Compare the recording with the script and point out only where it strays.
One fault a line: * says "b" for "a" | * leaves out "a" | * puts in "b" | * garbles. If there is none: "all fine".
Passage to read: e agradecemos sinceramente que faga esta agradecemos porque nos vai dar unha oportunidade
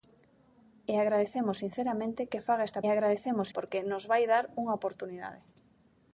all fine